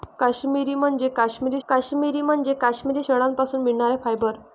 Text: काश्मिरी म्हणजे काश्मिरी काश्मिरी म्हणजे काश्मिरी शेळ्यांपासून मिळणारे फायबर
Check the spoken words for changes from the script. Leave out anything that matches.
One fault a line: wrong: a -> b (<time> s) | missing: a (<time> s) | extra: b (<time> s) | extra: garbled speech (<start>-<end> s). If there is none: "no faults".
no faults